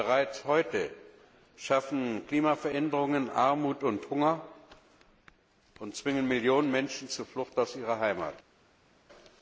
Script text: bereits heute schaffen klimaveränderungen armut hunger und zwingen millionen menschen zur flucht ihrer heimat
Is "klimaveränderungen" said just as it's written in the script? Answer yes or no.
yes